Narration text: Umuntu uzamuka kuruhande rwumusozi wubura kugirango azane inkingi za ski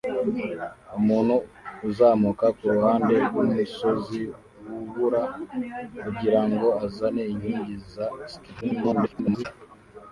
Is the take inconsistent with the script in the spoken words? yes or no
yes